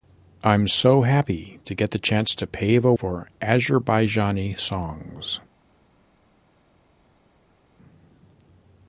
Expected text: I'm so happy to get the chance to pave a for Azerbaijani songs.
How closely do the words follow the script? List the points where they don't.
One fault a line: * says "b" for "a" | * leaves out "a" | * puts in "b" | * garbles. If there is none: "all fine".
all fine